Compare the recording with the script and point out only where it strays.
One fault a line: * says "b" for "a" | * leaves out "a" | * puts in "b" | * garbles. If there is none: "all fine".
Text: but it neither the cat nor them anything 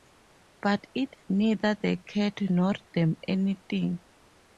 all fine